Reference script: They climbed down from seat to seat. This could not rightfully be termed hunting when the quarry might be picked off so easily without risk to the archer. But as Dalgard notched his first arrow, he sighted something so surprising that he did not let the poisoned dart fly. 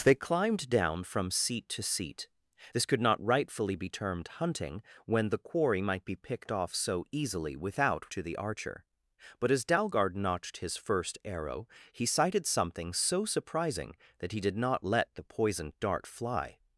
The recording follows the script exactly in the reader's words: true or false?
false